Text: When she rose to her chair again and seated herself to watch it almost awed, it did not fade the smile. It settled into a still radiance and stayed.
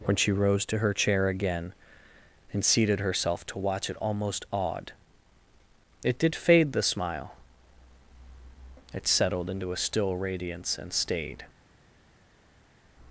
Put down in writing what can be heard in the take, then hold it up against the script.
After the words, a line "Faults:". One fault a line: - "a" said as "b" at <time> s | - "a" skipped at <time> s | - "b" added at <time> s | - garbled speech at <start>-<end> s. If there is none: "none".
When she rose to her chair again and seated herself to watch it almost awed, it did fade the smile. It settled into a still radiance and stayed.
Faults:
- "not" skipped at 6.3 s